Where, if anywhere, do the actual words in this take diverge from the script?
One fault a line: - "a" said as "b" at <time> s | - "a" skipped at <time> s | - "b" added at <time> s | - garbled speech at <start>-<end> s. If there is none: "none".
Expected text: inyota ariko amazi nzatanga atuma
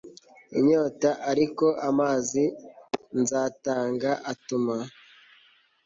none